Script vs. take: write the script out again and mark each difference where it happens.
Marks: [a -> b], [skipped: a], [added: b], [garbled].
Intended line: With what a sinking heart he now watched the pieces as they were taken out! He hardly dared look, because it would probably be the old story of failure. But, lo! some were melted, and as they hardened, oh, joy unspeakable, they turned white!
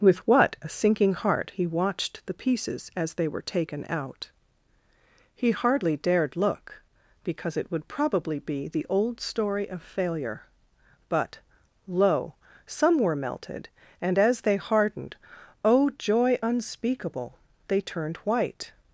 With what a sinking heart he [skipped: now] watched the pieces as they were taken out! He hardly dared look, because it would probably be the old story of failure. But, lo! some were melted, and as they hardened, oh, joy unspeakable, they turned white!